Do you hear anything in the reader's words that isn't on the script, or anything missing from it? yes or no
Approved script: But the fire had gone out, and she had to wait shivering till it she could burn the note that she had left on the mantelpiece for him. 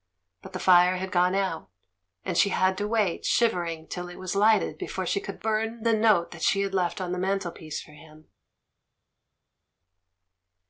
yes